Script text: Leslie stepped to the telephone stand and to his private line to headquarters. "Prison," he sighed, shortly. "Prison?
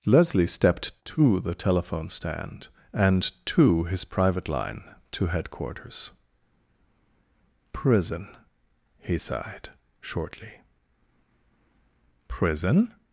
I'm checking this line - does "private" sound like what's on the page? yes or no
yes